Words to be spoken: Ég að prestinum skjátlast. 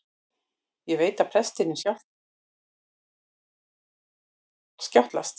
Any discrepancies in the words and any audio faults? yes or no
yes